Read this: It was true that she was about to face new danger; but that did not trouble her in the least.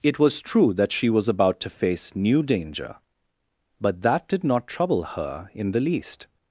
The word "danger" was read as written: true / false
true